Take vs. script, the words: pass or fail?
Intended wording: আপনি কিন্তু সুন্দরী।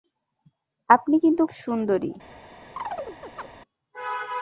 pass